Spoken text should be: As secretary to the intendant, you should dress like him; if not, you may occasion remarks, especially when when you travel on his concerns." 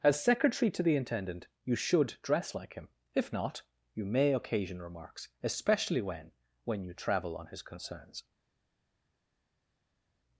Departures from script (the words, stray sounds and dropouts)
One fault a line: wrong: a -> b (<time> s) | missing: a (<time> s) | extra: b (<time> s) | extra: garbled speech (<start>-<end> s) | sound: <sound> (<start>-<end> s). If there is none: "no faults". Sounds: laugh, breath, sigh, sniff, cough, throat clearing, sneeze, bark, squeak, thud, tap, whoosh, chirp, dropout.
no faults